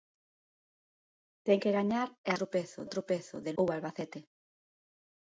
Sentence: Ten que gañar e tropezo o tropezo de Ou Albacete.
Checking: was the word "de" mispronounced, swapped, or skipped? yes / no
no